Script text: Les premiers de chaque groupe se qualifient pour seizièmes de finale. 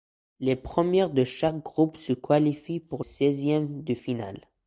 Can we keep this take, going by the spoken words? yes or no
yes